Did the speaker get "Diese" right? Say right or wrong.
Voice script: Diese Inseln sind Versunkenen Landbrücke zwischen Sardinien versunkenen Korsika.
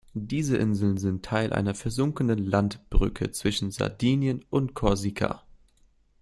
right